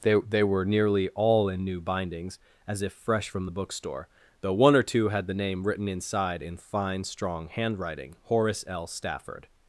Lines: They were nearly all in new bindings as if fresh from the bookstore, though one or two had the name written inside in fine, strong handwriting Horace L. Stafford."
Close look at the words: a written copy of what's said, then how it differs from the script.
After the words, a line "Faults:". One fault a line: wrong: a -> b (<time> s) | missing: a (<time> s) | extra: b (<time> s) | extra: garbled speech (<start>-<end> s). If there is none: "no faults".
They they were nearly all in new bindings as if fresh from the bookstore, though one or two had the name written inside in fine, strong handwriting Horace L. Stafford."
Faults:
extra: they (0.3 s)